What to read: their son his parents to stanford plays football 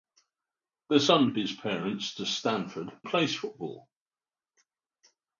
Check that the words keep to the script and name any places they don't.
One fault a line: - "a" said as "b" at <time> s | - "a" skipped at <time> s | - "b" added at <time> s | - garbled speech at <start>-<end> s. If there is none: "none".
none